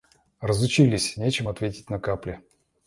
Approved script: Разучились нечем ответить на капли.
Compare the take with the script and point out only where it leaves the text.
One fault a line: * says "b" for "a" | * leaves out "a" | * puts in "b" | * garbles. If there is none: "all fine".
all fine